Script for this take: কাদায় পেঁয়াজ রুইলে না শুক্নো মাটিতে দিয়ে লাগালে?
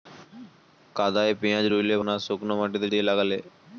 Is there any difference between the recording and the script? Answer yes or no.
no